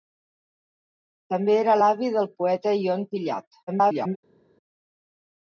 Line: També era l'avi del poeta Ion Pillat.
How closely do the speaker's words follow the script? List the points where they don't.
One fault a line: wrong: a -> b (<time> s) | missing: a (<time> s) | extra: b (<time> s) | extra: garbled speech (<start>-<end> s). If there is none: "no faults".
extra: garbled speech (3.7-4.2 s)